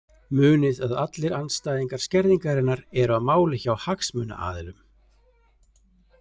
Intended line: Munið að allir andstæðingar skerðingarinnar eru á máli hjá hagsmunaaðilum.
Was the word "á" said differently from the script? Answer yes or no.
no